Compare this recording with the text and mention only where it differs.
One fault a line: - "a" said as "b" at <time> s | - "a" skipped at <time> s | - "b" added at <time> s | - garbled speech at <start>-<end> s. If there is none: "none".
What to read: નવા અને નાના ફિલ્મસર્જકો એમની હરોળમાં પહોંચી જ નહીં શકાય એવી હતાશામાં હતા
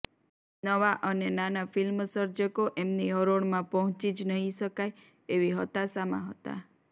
none